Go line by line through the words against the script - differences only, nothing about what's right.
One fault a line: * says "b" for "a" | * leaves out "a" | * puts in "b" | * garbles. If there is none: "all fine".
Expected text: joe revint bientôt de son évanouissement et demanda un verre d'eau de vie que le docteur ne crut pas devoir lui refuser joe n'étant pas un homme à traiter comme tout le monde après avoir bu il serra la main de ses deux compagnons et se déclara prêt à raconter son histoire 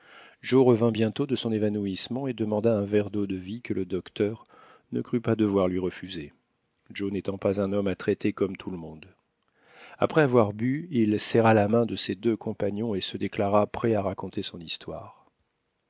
all fine